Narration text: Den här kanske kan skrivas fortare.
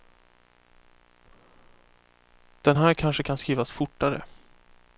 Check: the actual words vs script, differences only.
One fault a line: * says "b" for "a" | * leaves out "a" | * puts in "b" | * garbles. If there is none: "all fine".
all fine